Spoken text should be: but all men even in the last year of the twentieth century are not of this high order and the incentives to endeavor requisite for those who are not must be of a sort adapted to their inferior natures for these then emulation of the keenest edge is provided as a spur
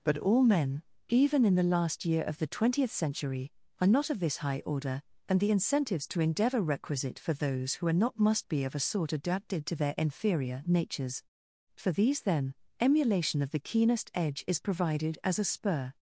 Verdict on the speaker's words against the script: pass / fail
pass